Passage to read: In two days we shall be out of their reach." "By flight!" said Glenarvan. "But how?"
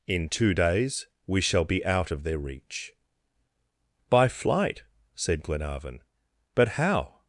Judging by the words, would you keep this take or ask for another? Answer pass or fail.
pass